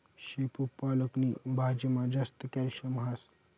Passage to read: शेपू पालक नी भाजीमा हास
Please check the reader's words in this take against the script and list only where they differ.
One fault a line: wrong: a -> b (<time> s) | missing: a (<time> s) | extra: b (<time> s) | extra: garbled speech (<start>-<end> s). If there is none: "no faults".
extra: जास्त कॅल्शियम (2.2 s)